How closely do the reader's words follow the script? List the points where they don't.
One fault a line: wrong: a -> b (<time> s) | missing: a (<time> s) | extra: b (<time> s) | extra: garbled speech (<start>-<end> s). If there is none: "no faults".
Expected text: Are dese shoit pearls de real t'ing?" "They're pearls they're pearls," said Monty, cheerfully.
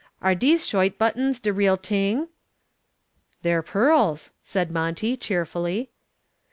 wrong: pearls -> buttons (1.0 s)
missing: they're pearls (4.3 s)